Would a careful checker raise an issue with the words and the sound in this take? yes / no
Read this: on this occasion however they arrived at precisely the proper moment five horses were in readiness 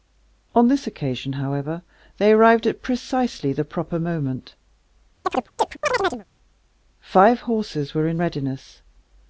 yes